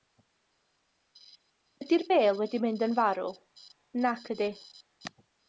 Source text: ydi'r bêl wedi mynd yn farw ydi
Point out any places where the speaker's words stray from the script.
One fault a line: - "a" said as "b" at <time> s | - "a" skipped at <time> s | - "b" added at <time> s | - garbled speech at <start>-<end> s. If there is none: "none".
- "nac" added at 4.1 s